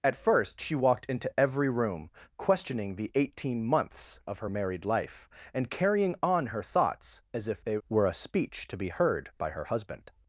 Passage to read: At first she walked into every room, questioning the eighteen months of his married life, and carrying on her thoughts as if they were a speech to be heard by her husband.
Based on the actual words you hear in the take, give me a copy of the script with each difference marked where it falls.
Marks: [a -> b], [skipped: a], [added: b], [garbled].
At first she walked into every room, questioning the eighteen months of [his -> her] married life, and carrying on her thoughts as if they were a speech to be heard by her husband.